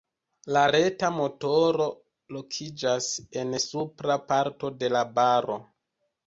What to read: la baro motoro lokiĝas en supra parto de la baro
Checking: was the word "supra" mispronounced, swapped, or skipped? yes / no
no